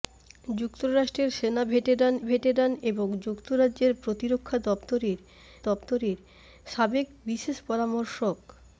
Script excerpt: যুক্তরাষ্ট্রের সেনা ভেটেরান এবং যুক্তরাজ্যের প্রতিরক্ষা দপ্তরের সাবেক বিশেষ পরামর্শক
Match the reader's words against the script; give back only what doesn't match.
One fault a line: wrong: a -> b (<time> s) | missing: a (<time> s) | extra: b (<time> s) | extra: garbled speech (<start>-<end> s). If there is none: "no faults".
extra: ভেটেরান (2.2 s)
extra: দপ্তরের (5.7 s)